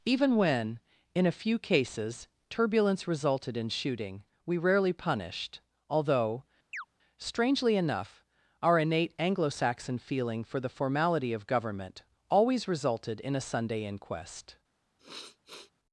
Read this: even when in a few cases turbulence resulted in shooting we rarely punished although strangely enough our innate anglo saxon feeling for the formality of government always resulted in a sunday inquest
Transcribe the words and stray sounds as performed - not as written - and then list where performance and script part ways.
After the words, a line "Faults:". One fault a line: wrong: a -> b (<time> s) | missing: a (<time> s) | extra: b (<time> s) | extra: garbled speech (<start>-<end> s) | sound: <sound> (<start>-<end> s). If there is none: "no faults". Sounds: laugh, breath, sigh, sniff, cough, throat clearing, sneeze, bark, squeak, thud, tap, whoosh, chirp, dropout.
even when in a few cases turbulence resulted in shooting we rarely punished although strangely enough our innate anglo saxon feeling for the formality of government always resulted in a sunday inquest
Faults:
sound: chirp (6.7-6.9 s)
sound: sniff (15.0-15.7 s)